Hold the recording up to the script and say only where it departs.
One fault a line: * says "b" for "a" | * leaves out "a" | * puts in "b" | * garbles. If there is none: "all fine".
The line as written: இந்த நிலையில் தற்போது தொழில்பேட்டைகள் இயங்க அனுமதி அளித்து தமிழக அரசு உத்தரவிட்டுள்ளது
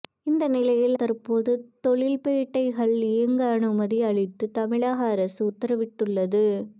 all fine